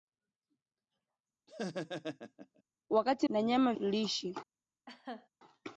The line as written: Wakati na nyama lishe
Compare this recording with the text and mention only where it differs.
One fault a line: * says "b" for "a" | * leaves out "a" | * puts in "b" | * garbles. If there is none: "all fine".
all fine